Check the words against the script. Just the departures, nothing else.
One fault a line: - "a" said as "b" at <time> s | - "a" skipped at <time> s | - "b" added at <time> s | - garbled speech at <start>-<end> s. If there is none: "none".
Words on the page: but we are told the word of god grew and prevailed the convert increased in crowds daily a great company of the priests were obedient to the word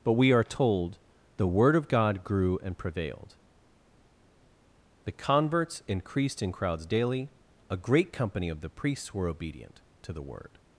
- "convert" said as "converts" at 5.1 s